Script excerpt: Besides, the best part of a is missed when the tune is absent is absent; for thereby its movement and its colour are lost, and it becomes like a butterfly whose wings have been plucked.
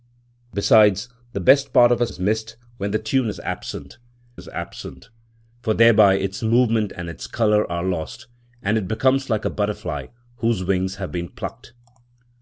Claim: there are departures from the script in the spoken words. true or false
false